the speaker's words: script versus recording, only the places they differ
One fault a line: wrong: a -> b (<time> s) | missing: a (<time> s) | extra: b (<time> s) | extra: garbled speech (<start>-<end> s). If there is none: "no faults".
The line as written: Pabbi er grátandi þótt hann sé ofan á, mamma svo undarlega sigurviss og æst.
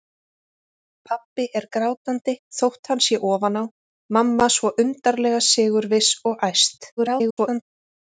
extra: garbled speech (7.0-7.6 s)